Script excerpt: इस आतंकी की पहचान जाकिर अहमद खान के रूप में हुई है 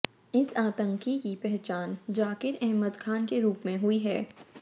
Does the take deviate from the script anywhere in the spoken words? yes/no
no